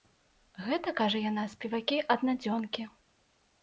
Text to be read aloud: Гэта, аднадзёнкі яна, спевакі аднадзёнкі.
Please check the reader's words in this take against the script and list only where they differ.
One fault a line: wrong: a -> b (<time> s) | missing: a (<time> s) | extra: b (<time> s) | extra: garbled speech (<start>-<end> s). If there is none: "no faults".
wrong: аднадзёнкі -> кажа (1.0 s)